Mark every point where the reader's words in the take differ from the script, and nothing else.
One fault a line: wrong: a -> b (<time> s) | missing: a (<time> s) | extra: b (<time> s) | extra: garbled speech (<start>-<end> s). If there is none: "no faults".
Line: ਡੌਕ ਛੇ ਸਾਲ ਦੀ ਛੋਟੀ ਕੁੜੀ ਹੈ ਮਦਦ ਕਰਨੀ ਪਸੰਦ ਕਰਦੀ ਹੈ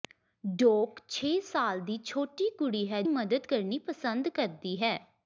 no faults